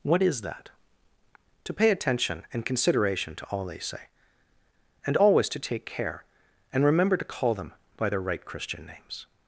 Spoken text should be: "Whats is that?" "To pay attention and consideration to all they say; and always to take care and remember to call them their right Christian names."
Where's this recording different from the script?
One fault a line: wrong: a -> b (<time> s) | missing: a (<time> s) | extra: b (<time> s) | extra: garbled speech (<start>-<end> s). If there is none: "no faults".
wrong: Whats -> What (0.0 s)
extra: by (8.0 s)